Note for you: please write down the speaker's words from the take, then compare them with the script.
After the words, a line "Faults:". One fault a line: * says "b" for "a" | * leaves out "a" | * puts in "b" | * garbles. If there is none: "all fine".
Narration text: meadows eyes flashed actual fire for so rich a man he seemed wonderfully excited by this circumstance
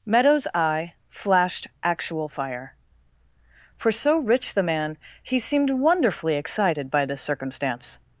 meadows eye flashed actual fire for so rich the man he seemed wonderfully excited by this circumstance
Faults:
* says "eye" for "eyes"
* says "the" for "a"